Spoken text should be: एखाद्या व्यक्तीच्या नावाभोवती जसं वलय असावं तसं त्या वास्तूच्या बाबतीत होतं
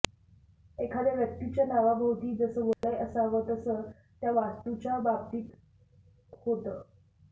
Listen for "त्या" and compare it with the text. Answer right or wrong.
right